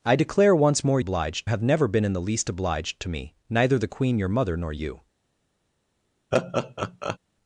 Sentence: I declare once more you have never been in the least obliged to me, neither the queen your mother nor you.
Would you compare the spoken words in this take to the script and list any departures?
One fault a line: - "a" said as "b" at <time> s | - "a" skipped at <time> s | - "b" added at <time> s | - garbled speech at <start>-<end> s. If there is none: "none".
- "you" said as "obliged" at 1.0 s